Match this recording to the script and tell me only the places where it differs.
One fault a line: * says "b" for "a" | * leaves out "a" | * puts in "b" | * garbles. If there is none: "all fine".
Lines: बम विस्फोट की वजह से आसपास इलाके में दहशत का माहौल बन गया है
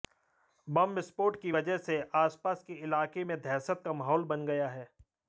* puts in "के"